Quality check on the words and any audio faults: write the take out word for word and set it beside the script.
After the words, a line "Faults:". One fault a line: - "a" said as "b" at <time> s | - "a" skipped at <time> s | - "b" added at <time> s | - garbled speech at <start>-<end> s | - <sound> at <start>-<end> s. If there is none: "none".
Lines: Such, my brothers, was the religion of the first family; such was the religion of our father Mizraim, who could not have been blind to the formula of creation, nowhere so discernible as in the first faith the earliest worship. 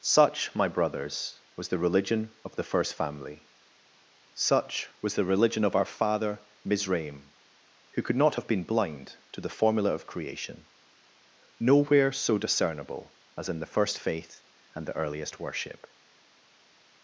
Such, my brothers, was the religion of the first family; such was the religion of our father Mizraim, who could not have been blind to the formula of creation, nowhere so discernible as in the first faith and the earliest worship.
Faults:
- "and" added at 14.7 s